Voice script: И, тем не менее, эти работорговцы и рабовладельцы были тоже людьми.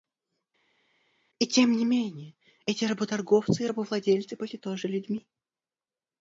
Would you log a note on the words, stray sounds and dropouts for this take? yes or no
no